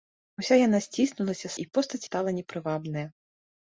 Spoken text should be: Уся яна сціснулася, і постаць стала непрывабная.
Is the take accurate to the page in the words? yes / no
yes